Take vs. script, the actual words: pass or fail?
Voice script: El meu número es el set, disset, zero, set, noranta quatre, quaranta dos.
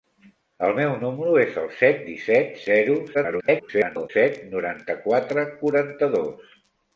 fail